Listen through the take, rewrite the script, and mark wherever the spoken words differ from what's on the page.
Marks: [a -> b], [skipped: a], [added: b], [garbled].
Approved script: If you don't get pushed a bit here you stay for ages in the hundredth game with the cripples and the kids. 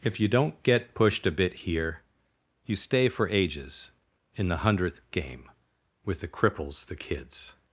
If you don't get pushed a bit here you stay for ages in the hundredth game with the cripples [skipped: and] the kids.